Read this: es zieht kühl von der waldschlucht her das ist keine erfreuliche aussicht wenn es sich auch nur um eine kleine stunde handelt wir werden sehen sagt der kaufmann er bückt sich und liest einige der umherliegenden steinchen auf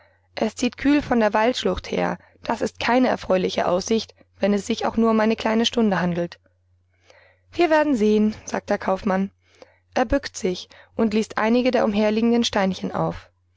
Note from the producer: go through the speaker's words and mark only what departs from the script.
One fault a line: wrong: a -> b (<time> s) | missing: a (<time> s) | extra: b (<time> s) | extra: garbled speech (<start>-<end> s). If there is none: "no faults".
no faults